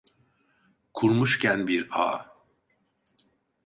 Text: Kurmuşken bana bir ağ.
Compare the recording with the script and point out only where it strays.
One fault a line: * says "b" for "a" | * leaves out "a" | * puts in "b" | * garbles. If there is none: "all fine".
* leaves out "bana"